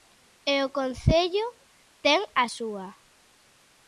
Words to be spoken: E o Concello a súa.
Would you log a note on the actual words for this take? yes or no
yes